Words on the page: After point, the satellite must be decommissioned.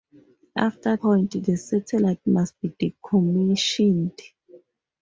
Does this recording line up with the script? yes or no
yes